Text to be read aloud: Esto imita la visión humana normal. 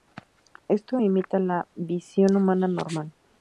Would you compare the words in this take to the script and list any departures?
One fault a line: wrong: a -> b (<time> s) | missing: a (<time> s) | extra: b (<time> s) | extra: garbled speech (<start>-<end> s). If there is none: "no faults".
no faults